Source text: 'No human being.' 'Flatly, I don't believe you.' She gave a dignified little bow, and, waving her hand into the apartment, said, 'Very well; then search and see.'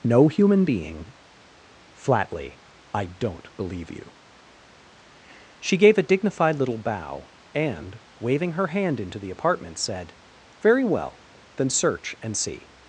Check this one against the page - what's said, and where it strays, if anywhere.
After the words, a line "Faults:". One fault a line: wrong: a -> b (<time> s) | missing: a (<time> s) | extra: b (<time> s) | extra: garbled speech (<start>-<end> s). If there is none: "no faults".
'No human being.' 'Flatly, I don't believe you.' She gave a dignified little bow, and, waving her hand into the apartment, said, 'Very well; then search and see.'
Faults:
no faults